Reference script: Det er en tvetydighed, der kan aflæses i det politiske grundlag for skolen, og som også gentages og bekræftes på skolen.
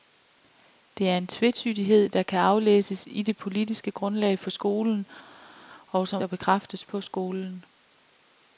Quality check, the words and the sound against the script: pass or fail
fail